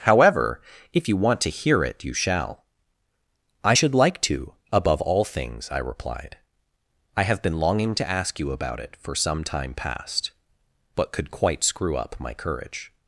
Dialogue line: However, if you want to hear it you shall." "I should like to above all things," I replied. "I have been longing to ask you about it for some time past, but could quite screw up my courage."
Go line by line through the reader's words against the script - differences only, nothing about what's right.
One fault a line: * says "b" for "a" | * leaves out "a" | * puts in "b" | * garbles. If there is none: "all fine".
all fine